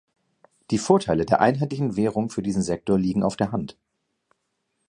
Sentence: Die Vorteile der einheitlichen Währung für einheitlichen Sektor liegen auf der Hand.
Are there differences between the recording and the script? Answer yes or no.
yes